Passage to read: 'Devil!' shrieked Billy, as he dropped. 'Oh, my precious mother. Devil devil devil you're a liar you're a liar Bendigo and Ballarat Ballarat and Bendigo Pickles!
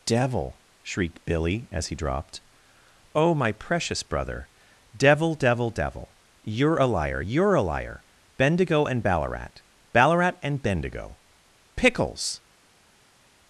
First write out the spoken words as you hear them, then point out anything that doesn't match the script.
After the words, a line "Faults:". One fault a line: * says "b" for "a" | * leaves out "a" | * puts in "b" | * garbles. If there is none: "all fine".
'Devil!' shrieked Billy, as he dropped. 'Oh, my precious brother. Devil devil devil you're a liar you're a liar Bendigo and Ballarat Ballarat and Bendigo Pickles!
Faults:
* says "brother" for "mother"